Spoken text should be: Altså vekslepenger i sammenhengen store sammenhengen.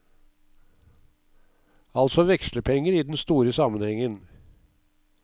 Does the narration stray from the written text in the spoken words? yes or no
yes